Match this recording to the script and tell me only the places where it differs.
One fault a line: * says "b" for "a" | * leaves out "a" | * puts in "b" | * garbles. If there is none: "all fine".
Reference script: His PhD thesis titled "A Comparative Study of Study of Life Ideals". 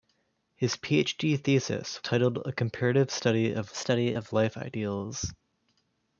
all fine